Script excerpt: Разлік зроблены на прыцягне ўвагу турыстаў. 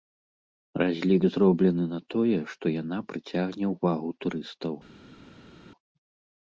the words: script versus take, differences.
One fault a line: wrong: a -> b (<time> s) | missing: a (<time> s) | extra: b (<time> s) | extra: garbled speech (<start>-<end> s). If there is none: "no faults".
extra: тое што яна (2.1 s)